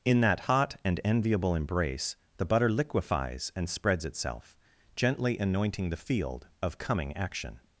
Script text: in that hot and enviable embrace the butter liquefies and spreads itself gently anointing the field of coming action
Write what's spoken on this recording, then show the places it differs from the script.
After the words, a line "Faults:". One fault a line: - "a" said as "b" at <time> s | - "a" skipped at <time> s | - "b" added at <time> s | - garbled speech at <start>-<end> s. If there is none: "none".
in that hot and enviable embrace the butter liquefies and spreads itself gently anointing the field of coming action
Faults:
none